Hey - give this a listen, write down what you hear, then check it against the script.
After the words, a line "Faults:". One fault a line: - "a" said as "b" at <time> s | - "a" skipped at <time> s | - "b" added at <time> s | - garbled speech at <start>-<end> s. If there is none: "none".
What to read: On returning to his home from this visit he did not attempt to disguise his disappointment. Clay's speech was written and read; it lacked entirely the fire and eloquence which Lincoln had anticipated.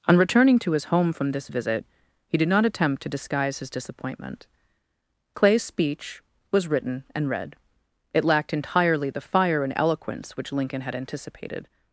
On returning to his home from this visit he did not attempt to disguise his disappointment. Clay's speech was written and read; it lacked entirely the fire and eloquence which Lincoln had anticipated.
Faults:
none